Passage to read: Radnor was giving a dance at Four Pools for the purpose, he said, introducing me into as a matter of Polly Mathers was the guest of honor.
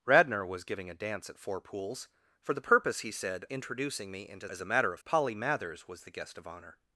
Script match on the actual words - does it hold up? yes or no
yes